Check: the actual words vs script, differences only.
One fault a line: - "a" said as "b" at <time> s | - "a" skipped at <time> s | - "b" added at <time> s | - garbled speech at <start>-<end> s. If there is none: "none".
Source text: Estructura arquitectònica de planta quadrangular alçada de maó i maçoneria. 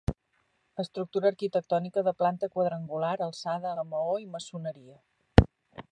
none